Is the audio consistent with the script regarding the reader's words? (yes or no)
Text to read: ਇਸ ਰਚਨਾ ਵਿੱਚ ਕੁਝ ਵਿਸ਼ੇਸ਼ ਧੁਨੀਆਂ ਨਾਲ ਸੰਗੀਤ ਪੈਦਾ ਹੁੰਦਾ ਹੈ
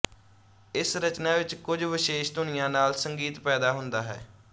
yes